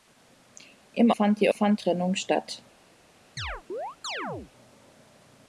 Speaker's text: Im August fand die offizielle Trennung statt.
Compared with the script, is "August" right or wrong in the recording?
wrong